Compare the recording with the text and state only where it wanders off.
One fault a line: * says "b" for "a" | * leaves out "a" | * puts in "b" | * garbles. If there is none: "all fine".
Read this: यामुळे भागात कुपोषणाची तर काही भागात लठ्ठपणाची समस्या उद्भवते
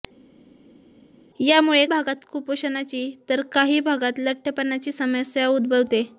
all fine